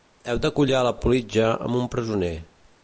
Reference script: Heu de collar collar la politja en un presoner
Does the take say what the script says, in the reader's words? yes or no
no